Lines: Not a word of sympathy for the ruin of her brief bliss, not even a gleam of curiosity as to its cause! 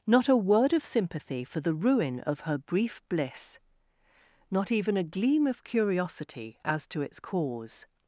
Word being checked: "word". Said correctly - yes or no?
yes